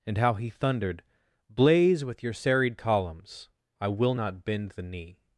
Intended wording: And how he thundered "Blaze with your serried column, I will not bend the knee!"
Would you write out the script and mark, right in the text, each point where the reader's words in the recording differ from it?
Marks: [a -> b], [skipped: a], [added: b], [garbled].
And how he thundered "Blaze with your serried [column, -> columns] I will not bend the knee!"